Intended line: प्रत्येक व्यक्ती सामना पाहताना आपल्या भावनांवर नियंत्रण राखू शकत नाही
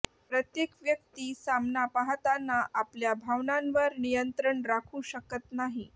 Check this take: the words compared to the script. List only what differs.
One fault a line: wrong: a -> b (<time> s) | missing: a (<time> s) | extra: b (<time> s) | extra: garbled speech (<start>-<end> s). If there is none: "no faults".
no faults